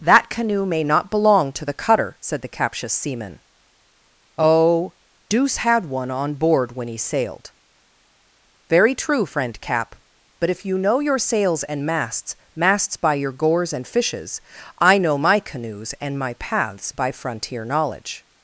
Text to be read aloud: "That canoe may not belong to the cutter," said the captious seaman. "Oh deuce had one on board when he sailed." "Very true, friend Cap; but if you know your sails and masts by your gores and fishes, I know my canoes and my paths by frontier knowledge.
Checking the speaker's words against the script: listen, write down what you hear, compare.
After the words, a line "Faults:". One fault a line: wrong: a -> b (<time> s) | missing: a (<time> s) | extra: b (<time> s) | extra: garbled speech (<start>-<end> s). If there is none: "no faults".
"That canoe may not belong to the cutter," said the captious seaman. "Oh deuce had one on board when he sailed." "Very true, friend Cap; but if you know your sails and masts masts by your gores and fishes, I know my canoes and my paths by frontier knowledge.
Faults:
extra: masts (12.5 s)